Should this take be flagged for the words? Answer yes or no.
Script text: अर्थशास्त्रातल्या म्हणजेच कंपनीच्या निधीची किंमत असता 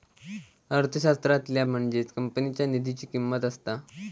no